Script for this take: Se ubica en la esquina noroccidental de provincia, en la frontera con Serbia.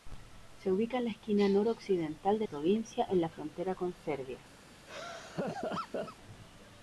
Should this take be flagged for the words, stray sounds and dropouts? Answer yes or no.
yes